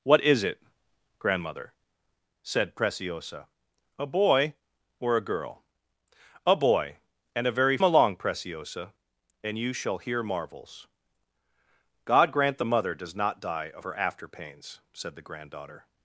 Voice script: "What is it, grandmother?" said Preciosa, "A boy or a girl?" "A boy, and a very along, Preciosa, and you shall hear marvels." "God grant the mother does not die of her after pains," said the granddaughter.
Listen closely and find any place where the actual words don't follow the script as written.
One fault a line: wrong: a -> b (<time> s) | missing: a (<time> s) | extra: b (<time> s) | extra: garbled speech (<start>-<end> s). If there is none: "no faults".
no faults